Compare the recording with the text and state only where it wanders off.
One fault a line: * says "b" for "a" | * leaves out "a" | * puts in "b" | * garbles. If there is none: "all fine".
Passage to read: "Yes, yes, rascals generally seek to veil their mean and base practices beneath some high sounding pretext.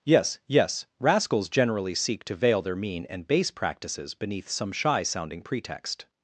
* says "shy" for "high"